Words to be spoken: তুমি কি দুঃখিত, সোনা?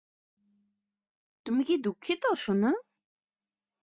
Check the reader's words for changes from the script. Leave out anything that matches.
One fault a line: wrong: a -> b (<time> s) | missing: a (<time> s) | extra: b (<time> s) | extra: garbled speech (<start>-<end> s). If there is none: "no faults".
no faults